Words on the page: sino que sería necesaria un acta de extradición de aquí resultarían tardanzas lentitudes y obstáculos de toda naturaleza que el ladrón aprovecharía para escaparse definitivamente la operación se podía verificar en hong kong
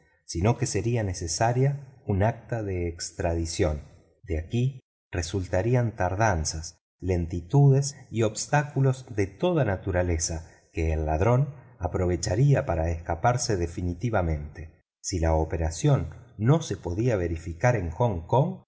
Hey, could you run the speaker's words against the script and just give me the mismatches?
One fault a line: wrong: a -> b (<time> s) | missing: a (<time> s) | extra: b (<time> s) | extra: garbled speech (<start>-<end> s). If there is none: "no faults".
extra: si (15.0 s)
extra: no (16.4 s)